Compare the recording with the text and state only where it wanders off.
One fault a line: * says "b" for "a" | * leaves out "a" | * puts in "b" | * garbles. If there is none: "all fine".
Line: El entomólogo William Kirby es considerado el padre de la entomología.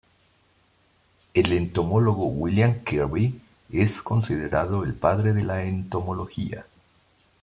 all fine